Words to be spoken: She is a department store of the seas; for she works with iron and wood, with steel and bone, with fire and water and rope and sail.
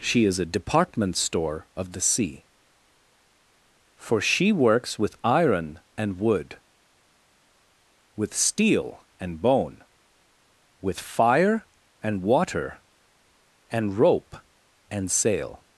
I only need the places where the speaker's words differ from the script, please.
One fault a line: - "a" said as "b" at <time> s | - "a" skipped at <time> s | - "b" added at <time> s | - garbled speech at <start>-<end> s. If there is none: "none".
- "seas" said as "sea" at 2.0 s